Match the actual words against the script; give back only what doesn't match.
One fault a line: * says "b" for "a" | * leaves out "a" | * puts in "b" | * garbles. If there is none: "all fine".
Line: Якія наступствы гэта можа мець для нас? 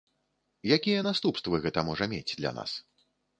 all fine